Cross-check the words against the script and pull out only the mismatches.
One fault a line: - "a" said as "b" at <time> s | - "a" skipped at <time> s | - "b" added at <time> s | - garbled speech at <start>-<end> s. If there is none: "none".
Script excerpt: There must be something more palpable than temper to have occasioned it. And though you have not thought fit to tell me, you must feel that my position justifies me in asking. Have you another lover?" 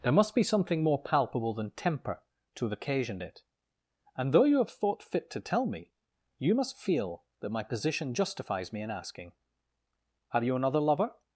- "not" skipped at 4.7 s